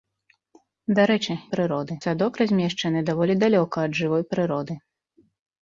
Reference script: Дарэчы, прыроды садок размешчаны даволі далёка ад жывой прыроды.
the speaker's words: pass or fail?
pass